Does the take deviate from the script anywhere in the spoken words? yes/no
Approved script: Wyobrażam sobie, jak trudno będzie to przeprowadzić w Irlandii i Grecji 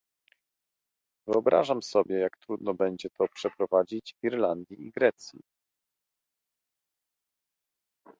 no